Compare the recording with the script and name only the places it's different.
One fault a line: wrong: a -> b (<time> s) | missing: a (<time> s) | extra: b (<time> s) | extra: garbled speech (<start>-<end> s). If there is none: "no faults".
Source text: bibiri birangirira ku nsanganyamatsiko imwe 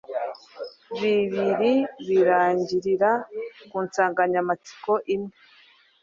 no faults